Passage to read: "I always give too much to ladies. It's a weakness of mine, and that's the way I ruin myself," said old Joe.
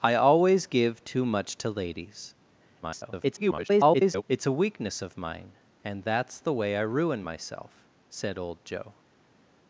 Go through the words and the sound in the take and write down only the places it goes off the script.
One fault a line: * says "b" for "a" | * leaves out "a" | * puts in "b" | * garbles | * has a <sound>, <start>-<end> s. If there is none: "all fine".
* garbles